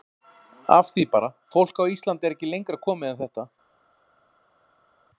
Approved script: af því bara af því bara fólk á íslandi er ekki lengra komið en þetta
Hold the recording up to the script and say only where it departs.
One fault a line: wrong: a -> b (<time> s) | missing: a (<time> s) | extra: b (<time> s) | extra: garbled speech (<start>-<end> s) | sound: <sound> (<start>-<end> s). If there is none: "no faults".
missing: af því bara (1.3 s)